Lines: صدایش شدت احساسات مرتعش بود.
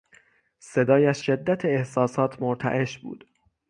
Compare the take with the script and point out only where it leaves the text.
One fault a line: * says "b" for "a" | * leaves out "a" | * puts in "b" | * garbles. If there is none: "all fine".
all fine